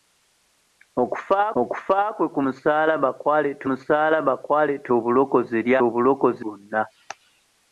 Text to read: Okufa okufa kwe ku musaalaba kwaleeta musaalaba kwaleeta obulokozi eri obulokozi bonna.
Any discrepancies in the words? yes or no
no